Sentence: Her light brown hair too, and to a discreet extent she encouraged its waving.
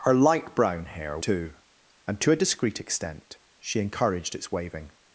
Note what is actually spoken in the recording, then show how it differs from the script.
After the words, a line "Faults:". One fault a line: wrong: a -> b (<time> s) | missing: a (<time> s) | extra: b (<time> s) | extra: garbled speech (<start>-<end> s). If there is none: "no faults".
Her light brown hair too, and to a discreet extent she encouraged its waving.
Faults:
no faults